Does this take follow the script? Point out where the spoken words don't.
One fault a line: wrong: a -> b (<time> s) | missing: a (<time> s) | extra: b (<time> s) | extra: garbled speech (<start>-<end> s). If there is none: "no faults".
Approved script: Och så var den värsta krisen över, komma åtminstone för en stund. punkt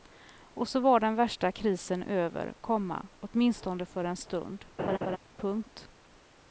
no faults